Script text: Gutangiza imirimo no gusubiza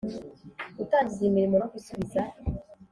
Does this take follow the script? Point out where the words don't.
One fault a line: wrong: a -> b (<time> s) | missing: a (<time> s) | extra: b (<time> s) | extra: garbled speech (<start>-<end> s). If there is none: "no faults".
no faults